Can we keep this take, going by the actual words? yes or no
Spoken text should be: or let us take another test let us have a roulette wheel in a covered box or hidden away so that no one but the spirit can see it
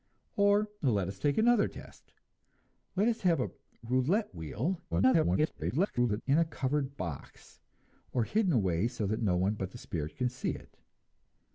no